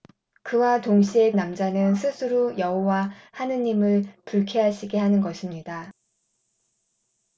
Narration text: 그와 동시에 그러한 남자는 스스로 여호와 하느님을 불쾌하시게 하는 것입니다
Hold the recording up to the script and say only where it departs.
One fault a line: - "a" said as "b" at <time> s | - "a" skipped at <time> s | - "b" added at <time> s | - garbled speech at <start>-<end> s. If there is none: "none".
- "그러한" skipped at 1.3 s